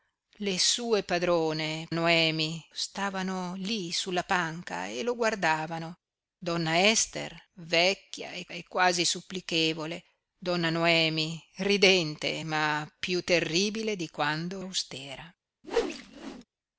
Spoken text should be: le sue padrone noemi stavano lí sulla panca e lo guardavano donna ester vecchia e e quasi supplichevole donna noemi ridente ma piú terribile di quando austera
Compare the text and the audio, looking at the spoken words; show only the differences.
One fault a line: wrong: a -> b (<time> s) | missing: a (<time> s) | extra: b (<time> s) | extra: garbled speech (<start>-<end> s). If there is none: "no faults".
no faults